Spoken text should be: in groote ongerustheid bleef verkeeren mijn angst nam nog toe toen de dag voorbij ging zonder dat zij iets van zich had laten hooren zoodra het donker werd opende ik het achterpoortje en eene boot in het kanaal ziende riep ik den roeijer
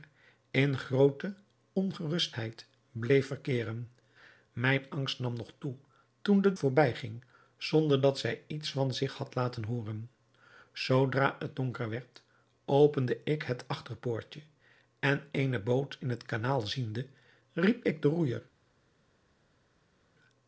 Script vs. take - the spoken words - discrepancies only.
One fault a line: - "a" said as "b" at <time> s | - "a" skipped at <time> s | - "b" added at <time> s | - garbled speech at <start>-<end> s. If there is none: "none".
- "dag" skipped at 6.5 s